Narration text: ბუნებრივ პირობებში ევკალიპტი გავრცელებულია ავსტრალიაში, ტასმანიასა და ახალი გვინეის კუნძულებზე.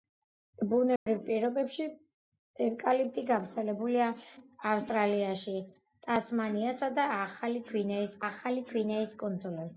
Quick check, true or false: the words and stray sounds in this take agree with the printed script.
false